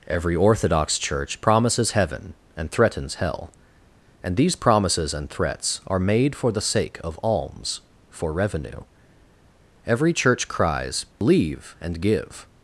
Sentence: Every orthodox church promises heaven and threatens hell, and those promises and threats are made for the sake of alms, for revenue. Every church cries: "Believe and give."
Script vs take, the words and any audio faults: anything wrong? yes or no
yes